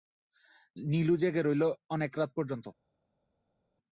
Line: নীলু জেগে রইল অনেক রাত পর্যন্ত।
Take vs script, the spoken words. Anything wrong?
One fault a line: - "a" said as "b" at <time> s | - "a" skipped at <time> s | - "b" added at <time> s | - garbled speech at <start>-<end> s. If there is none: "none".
none